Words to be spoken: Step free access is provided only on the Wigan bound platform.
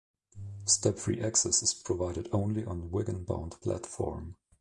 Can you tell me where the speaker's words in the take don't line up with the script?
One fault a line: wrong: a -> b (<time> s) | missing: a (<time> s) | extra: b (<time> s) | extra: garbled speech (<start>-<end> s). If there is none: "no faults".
no faults